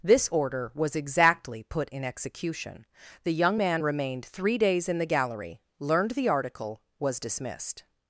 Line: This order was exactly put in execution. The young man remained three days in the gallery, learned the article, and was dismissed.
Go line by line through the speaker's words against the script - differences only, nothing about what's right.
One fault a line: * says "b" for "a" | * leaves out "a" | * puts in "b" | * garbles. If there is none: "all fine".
* leaves out "and"